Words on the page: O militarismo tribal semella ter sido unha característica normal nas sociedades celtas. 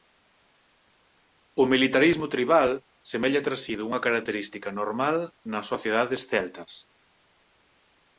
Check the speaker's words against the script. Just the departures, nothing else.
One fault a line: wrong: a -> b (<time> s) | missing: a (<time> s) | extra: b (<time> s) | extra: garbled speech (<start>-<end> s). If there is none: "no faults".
no faults